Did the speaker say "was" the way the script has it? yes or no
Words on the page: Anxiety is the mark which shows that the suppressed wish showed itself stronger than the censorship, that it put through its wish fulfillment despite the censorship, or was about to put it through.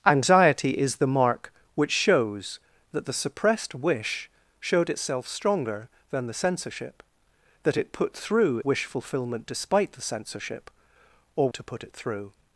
no